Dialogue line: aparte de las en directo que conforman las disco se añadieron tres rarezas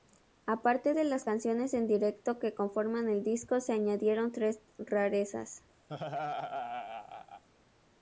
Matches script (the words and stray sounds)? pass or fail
fail